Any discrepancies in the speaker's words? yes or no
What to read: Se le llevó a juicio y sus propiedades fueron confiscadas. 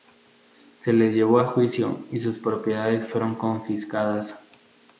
no